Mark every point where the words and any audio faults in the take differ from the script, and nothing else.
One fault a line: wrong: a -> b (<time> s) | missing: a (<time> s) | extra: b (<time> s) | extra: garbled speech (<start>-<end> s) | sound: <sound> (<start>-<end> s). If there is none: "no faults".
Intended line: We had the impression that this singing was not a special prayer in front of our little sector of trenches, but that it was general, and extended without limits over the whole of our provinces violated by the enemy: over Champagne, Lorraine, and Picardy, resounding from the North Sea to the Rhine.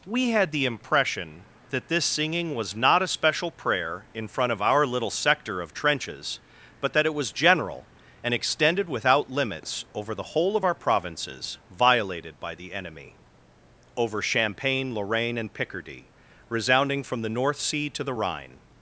no faults